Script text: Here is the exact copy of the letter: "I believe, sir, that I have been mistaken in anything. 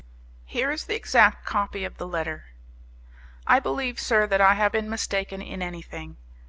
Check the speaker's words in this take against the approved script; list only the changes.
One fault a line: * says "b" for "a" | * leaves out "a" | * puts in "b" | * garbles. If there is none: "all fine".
all fine